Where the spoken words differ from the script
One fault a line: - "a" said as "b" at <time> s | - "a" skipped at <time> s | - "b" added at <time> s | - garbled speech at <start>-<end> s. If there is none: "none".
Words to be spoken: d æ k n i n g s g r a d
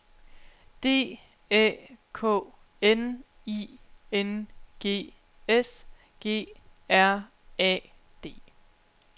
none